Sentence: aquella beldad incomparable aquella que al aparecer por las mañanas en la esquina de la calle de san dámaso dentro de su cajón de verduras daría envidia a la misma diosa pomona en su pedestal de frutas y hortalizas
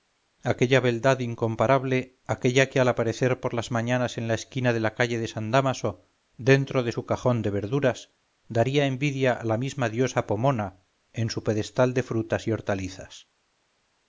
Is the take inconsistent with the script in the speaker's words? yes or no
no